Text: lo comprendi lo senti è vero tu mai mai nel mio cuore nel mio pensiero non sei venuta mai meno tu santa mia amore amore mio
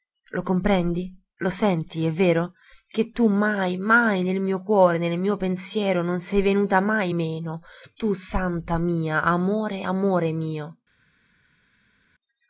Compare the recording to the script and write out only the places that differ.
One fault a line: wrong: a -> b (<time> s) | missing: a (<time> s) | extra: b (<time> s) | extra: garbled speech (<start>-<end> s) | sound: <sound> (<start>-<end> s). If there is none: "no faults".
extra: che (2.9 s)